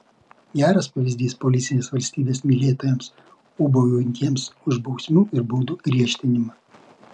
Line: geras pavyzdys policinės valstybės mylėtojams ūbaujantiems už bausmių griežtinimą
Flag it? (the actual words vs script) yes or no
yes